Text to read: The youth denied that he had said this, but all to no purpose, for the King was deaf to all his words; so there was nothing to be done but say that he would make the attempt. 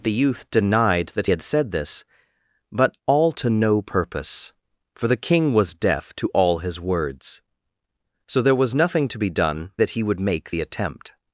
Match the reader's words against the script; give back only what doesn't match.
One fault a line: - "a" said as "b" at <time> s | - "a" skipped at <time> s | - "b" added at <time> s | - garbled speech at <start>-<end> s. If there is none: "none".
- "he" skipped at 1.3 s
- "but say" skipped at 9.7 s